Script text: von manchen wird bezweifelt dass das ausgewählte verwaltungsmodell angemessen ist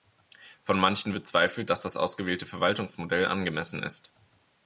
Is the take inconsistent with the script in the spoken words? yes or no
yes